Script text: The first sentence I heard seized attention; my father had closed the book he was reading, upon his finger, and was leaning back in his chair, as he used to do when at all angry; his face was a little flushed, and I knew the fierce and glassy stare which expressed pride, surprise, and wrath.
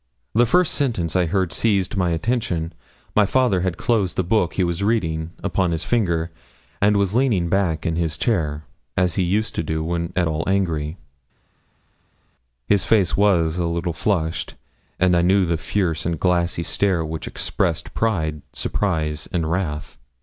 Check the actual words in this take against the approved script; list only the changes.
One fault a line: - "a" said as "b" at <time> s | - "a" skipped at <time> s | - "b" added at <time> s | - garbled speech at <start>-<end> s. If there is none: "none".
- "my" added at 1.9 s